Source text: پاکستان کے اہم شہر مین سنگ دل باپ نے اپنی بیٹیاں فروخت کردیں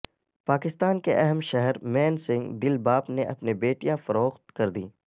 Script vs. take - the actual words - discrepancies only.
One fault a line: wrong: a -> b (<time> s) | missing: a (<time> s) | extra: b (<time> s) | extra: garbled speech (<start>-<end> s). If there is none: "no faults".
no faults